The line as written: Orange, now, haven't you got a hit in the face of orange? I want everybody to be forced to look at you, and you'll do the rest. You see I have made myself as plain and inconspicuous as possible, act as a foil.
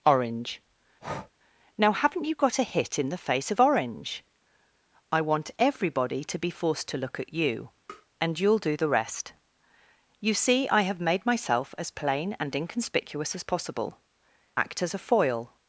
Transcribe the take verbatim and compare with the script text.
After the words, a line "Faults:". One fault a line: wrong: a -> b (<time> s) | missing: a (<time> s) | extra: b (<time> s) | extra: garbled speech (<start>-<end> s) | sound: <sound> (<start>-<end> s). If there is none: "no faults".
Orange, now, haven't you got a hit in the face of orange? I want everybody to be forced to look at you, and you'll do the rest. You see I have made myself as plain and inconspicuous as possible, act as a foil.
Faults:
sound: breath (1.0-1.3 s)
sound: tap (7.9-8.1 s)